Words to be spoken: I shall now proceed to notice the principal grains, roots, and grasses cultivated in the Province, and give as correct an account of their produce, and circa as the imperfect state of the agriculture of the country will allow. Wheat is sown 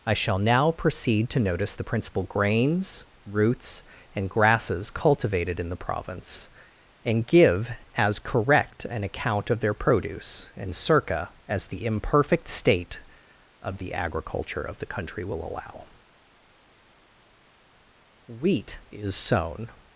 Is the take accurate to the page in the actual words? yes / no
yes